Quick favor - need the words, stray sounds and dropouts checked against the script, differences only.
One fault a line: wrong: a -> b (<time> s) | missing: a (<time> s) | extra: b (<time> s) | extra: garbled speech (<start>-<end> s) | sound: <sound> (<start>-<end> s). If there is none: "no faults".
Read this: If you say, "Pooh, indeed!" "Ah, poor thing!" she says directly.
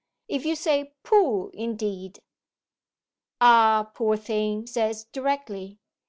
missing: she (4.7 s)